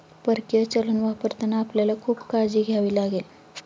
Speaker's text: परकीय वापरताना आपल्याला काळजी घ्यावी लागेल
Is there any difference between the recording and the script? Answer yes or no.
yes